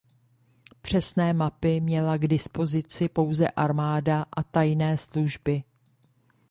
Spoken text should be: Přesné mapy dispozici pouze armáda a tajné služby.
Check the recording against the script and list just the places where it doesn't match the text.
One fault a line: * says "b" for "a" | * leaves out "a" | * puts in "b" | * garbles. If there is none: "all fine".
* puts in "měla k"